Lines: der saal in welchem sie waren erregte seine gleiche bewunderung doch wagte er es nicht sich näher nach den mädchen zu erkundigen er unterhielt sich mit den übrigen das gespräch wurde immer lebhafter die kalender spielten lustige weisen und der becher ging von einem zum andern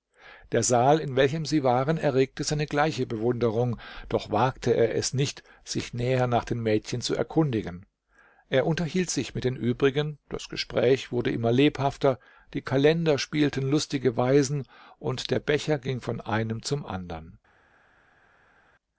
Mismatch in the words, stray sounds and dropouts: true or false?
false